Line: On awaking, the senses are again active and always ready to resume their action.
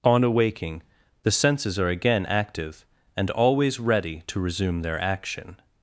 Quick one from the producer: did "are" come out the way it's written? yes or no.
yes